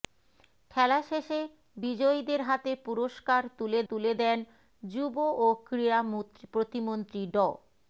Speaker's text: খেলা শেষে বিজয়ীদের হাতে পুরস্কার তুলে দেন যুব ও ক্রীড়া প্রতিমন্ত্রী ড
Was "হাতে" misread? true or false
false